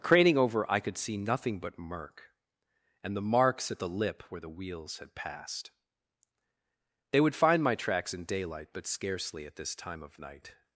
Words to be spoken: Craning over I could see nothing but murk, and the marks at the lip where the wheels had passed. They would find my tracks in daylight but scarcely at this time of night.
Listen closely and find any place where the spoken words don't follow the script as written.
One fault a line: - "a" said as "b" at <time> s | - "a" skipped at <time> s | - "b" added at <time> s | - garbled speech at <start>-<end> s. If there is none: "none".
none